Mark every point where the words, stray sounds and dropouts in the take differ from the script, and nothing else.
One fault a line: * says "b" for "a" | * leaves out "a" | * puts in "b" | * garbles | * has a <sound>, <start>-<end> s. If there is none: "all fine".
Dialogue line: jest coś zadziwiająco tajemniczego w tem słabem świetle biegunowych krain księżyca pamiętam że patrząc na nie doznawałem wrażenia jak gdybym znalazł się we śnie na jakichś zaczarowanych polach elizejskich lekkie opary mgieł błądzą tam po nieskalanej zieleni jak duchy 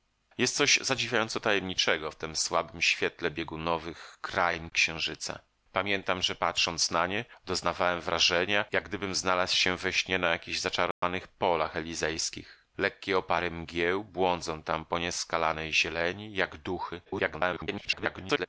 * has a dropout, 10.9-11.0 s
* garbles